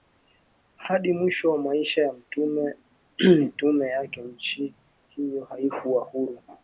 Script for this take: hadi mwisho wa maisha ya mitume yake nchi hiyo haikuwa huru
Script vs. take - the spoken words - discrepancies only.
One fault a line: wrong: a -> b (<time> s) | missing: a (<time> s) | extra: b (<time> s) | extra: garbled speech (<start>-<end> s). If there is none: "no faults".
no faults